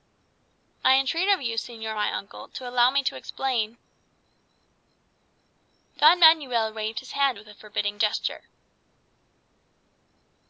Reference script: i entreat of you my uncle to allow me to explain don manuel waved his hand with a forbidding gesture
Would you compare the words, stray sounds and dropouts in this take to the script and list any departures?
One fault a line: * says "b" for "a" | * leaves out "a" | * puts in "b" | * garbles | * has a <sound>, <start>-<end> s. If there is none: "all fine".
* puts in "señor"